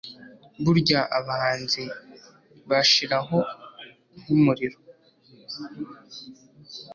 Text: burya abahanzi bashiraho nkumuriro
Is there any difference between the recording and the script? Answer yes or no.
no